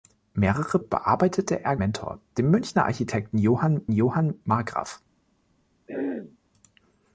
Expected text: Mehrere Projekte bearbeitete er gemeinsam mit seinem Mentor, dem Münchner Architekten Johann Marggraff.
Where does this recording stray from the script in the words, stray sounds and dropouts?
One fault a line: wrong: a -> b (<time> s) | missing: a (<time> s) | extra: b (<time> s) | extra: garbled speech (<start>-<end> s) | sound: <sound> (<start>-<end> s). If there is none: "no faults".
missing: Projekte (0.8 s)
missing: gemeinsam mit seinem (1.8 s)
extra: Johann (3.9 s)
sound: throat clearing (5.9-6.4 s)